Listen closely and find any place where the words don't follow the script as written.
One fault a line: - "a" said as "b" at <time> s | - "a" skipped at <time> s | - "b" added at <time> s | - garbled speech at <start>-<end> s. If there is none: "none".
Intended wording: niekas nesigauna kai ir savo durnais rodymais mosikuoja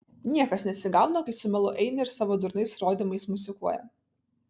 - "su melu eina" added at 1.4 s